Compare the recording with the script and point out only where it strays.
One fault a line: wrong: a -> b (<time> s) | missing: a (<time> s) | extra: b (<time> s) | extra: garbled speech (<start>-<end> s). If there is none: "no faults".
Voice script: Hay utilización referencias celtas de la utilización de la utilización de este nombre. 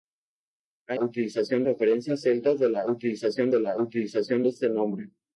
no faults